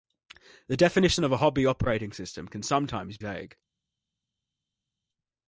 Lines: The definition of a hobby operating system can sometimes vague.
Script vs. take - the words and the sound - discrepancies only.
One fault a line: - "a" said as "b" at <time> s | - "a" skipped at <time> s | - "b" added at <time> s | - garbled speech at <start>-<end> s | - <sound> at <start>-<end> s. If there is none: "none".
none